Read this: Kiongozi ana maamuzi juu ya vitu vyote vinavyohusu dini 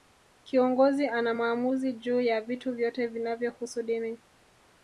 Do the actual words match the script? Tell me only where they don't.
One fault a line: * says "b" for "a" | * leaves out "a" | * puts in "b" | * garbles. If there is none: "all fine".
all fine